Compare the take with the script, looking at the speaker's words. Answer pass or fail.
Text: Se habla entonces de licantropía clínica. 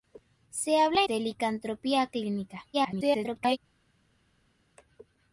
fail